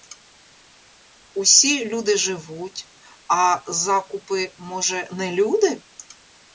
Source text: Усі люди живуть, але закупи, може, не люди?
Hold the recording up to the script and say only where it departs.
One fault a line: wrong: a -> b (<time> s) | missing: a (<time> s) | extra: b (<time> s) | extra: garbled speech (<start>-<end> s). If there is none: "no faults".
wrong: але -> а (3.3 s)